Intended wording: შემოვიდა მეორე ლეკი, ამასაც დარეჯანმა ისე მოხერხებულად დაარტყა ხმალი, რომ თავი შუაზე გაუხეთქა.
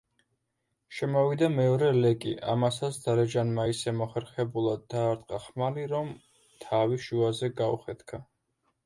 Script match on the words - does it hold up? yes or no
yes